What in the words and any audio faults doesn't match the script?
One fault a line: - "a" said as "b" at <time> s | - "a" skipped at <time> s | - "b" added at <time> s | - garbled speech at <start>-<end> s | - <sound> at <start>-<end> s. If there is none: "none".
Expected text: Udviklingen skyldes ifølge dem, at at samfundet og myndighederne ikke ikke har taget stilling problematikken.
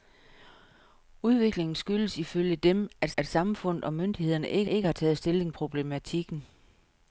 none